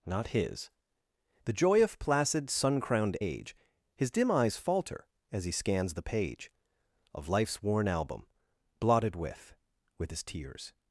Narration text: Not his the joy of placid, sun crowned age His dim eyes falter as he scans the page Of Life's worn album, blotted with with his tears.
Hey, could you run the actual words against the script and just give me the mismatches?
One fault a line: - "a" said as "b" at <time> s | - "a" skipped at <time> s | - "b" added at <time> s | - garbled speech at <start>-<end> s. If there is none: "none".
none